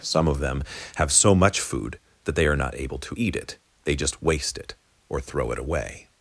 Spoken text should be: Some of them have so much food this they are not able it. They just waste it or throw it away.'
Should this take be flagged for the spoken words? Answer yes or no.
yes